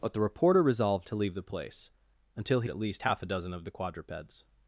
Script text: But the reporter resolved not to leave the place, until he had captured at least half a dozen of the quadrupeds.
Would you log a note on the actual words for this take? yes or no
yes